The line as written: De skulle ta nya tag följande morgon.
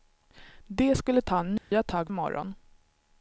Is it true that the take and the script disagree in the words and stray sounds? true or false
true